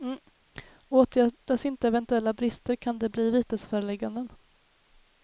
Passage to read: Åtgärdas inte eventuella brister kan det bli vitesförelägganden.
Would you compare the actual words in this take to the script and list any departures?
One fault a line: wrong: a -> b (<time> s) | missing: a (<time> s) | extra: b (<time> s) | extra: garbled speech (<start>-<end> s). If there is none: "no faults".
no faults